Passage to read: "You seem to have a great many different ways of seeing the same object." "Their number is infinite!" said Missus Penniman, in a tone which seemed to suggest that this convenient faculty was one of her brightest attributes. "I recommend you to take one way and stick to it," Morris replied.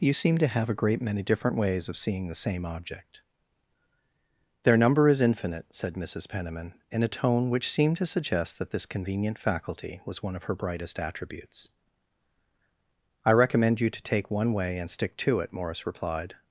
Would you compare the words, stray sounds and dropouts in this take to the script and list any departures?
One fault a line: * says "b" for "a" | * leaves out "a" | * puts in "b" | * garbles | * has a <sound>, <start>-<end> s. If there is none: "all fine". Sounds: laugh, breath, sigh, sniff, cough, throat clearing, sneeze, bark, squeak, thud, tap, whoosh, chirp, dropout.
all fine